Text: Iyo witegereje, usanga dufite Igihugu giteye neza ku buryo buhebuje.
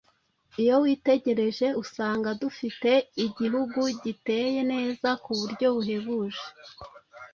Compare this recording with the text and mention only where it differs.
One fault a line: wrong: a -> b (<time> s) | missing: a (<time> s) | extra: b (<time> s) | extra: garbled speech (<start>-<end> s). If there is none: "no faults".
no faults